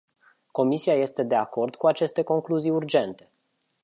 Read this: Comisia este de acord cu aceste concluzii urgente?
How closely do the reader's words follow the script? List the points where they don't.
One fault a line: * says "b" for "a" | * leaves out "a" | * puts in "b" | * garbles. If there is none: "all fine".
all fine